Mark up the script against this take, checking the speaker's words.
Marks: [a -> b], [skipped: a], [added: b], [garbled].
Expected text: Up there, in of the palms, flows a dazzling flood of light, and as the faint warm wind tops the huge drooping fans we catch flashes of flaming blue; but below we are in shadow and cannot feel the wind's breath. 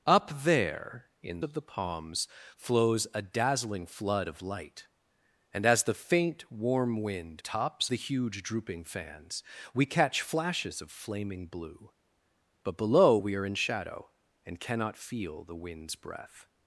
Up there, in of the palms, flows a dazzling flood of light, and as the faint warm wind tops the huge drooping fans we catch flashes of flaming blue; but below we are in shadow and cannot feel the wind's breath.